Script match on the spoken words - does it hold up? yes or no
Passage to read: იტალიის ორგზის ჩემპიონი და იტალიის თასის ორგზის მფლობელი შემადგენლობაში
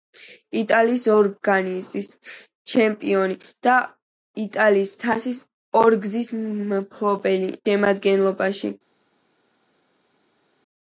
yes